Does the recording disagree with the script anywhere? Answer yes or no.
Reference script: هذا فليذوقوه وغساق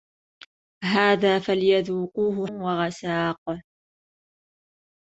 no